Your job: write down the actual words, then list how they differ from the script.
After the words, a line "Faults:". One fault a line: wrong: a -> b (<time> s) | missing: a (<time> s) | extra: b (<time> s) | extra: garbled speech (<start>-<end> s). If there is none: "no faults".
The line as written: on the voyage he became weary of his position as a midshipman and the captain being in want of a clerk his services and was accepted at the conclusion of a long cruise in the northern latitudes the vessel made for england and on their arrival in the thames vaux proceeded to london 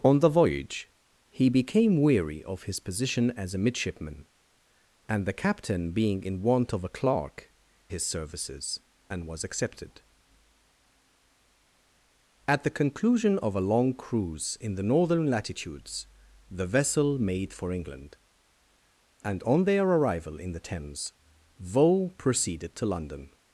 on the voyage he became weary of his position as a midshipman and the captain being in want of a clerk his services and was accepted at the conclusion of a long cruise in the northern latitudes the vessel made for england and on their arrival in the thames vaux proceeded to london
Faults:
no faults